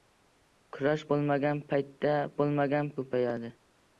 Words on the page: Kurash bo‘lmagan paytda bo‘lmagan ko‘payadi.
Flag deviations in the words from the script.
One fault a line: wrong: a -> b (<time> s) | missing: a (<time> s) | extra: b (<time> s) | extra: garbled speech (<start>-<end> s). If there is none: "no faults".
no faults